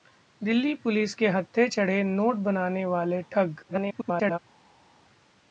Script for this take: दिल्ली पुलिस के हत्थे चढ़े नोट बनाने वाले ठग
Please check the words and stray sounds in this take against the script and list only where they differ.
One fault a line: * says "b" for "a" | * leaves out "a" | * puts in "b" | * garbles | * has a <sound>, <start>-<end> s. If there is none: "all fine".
* garbles